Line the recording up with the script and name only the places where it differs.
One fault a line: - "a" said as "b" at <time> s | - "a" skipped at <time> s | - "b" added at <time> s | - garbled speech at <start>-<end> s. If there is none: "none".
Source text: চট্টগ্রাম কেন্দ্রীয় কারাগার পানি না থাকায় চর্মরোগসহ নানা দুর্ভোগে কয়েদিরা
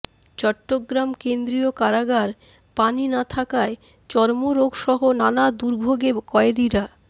none